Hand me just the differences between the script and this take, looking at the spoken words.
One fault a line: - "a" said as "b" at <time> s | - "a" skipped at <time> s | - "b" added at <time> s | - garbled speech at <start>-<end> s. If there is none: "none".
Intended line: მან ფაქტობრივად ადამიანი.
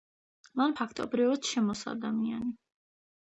- "შემოსა" added at 1.5 s